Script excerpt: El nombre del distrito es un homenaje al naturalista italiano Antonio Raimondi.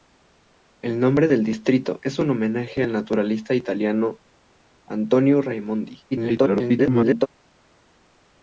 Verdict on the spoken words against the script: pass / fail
fail